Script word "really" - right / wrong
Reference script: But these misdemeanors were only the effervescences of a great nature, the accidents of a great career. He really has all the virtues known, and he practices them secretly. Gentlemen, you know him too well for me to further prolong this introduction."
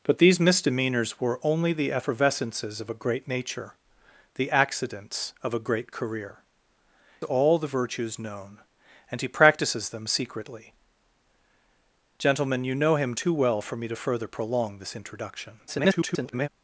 wrong